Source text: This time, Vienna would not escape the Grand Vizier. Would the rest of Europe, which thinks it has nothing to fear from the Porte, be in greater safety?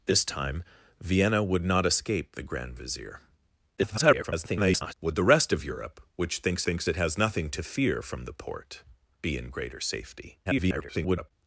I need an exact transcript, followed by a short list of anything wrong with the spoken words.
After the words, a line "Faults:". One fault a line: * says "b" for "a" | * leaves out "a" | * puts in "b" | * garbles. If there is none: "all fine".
This time, Vienna would not escape the Grand Vizier. [garbled] Would the rest of Europe, which thinks thinks it has nothing to fear from the Porte, be in greater safety? [garbled]
Faults:
* garbles
* puts in "thinks"
* garbles